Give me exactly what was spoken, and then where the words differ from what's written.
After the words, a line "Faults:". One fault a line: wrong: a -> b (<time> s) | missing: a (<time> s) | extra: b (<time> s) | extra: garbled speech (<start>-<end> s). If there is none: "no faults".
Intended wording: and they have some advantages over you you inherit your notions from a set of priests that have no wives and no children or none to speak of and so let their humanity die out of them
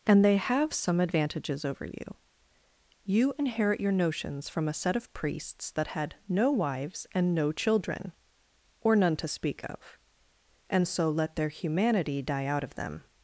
and they have some advantages over you you inherit your notions from a set of priests that had no wives and no children or none to speak of and so let their humanity die out of them
Faults:
wrong: have -> had (5.9 s)